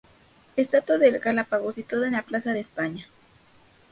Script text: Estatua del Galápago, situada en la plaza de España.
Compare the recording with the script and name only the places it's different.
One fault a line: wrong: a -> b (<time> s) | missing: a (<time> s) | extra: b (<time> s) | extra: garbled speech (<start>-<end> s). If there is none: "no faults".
no faults